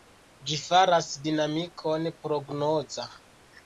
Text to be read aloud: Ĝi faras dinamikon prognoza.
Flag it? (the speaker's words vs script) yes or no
no